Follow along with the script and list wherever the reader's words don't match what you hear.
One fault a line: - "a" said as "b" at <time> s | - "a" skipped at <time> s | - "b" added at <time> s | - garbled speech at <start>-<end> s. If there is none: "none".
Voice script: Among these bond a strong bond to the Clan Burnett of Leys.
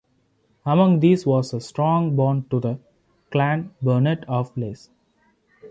- "bond" said as "was" at 1.3 s